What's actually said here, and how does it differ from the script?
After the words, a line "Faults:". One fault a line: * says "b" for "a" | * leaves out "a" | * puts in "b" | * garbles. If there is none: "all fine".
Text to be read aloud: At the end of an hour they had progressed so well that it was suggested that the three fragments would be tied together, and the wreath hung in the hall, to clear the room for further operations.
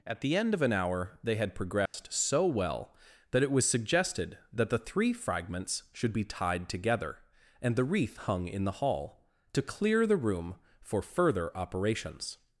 At the end of an hour they had progressed so well that it was suggested that the three fragments should be tied together, and the wreath hung in the hall, to clear the room for further operations.
Faults:
* says "should" for "would"